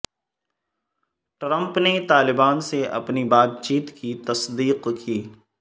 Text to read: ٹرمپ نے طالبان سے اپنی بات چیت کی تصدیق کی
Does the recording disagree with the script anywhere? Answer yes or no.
no